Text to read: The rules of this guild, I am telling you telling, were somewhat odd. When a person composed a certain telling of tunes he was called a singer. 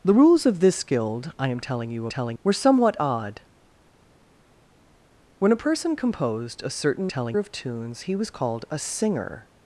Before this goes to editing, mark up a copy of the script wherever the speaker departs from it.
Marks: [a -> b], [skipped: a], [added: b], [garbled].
The rules of this guild, I am telling you telling, were somewhat odd. When a person composed a certain telling of tunes he was called a singer.